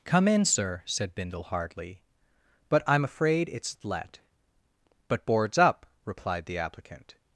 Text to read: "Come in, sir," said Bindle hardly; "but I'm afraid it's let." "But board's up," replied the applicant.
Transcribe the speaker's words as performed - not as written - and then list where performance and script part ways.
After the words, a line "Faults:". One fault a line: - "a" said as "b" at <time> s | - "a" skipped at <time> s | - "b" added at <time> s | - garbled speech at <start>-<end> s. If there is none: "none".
"Come in, sir," said Bindle hardly; "but I'm afraid it's let." "But board's up," replied the applicant.
Faults:
none